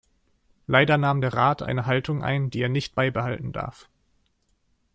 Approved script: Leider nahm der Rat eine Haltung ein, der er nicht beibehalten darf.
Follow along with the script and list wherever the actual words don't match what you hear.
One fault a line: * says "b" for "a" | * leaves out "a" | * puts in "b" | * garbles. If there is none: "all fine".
* says "die" for "der"